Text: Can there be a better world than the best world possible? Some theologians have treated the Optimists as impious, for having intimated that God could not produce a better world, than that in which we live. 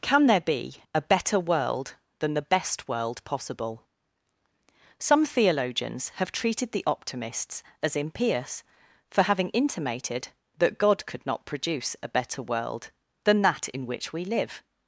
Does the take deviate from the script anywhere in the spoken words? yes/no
no